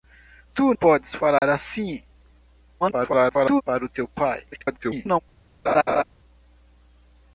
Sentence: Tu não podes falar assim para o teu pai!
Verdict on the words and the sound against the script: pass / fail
fail